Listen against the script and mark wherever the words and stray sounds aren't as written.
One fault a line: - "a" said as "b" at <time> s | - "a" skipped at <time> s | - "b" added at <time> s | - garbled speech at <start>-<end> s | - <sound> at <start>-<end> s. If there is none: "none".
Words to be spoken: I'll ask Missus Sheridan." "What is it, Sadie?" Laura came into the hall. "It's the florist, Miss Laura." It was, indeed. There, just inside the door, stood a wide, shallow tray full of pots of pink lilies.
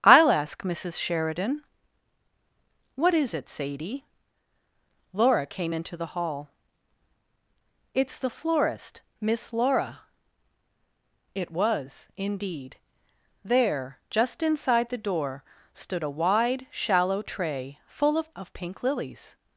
- "pots" skipped at 18.3 s